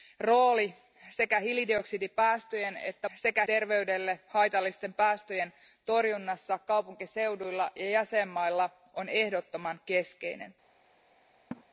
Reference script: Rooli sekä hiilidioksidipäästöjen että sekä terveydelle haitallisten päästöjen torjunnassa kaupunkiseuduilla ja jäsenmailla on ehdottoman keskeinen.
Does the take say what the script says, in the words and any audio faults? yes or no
no